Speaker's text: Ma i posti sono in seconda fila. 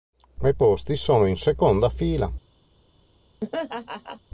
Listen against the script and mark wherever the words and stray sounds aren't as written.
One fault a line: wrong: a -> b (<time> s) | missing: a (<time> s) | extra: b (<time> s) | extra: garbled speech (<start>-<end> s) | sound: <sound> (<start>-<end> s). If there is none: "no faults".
sound: laugh (3.4-4.2 s)